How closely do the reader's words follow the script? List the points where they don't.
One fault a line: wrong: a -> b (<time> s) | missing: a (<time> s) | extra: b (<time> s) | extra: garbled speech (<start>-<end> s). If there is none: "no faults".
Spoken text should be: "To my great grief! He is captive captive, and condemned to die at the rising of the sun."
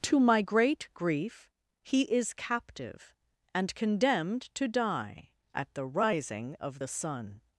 missing: captive (3.1 s)